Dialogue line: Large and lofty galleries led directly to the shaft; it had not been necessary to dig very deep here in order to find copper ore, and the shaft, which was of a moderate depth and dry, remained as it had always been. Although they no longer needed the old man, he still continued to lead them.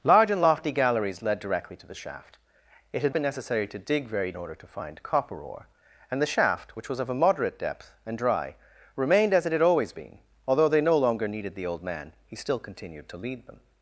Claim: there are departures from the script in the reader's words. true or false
true